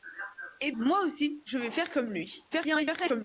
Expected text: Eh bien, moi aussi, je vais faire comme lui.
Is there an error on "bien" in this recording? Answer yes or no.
yes